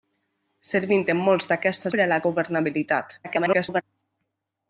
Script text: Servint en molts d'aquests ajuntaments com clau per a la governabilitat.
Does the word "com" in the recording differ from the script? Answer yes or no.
yes